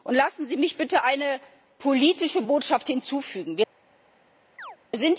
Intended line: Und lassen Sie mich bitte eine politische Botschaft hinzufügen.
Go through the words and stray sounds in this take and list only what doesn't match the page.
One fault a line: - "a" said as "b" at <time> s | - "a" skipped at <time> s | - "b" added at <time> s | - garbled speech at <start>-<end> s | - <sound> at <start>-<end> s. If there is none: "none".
- chirp at 4.6-4.8 s